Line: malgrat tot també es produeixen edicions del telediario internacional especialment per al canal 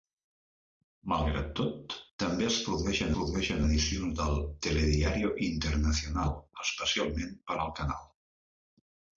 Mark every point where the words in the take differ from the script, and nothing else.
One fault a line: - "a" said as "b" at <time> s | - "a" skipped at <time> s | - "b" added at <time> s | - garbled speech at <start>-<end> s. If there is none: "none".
- "produeixen" added at 3.2 s